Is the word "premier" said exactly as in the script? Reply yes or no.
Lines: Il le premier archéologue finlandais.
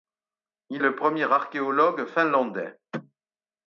yes